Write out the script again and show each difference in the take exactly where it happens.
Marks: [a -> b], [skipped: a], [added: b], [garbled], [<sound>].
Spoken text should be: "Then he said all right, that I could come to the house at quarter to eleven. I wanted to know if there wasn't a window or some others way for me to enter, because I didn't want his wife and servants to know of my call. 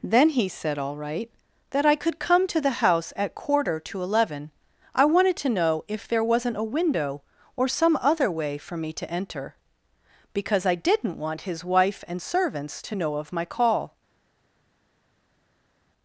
"Then he said all right, that I could come to the house at quarter to eleven. I wanted to know if there wasn't a window or some [others -> other] way for me to enter, because I didn't want his wife and servants to know of my call.